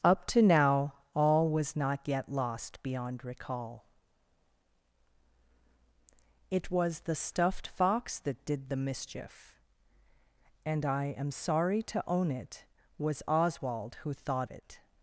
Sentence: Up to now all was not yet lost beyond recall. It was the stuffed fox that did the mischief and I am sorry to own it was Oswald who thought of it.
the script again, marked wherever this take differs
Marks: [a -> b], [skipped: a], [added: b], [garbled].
Up to now all was not yet lost beyond recall. It was the stuffed fox that did the mischief and I am sorry to own it was Oswald who thought [skipped: of] it.